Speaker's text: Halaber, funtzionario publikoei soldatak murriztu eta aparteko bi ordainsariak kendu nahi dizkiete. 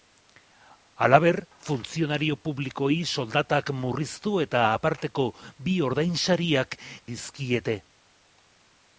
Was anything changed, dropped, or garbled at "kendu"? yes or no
yes